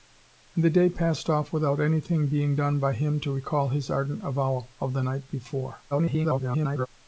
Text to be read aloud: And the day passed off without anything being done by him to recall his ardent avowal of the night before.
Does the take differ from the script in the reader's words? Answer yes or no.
yes